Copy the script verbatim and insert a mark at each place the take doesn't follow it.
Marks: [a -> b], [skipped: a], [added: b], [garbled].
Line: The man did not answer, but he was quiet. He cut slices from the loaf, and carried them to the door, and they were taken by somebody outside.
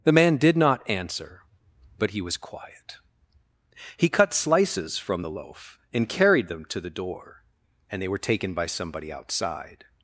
The man did not answer, but he was quiet. He cut slices from the loaf, and carried them to the door, and they were taken by somebody outside.